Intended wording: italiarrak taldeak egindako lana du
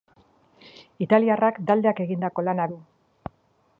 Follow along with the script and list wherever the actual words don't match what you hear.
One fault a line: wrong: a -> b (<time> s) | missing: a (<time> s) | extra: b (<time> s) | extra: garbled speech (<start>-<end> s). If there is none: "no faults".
no faults